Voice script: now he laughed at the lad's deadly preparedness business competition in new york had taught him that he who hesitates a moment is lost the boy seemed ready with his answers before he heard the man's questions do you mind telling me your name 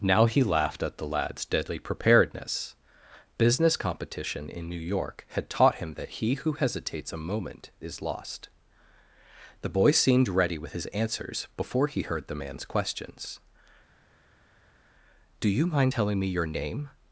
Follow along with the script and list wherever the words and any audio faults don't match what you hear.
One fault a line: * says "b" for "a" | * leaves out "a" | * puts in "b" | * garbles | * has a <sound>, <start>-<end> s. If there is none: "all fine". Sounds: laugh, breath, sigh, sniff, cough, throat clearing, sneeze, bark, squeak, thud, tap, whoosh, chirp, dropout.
all fine